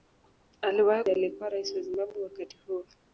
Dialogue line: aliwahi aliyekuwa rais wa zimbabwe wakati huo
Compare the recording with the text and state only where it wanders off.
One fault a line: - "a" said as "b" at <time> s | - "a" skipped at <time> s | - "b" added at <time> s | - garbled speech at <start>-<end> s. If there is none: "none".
none